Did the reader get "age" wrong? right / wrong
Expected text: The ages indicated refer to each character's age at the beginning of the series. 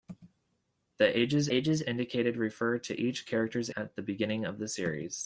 wrong